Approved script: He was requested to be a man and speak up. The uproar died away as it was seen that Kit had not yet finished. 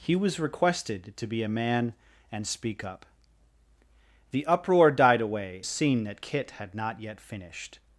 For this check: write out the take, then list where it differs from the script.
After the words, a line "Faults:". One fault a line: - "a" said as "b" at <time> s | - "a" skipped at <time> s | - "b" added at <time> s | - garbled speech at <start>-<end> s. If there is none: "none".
He was requested to be a man and speak up. The uproar died away seen that Kit had not yet finished.
Faults:
- "as it was" skipped at 5.6 s